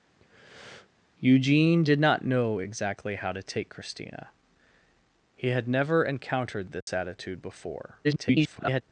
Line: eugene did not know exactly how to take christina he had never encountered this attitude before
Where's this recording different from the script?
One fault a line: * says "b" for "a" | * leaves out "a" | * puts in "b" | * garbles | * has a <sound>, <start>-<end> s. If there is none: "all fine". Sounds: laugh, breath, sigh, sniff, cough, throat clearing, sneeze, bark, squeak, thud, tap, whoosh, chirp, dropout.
* has a breath, 0.2-0.9 s
* has a dropout, 6.8-6.9 s
* garbles